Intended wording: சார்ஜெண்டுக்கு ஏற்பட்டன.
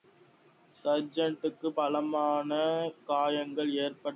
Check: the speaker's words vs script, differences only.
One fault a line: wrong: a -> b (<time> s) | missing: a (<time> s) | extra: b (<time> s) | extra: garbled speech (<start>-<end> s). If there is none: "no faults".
extra: பலமான காயங்கள் (1.7 s)